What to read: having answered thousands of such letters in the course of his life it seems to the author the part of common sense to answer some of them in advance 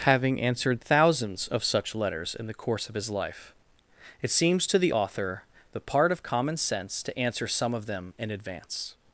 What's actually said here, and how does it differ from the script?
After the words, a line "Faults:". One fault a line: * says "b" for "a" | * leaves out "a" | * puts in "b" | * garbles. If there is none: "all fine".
having answered thousands of such letters in the course of his life it seems to the author the part of common sense to answer some of them in advance
Faults:
all fine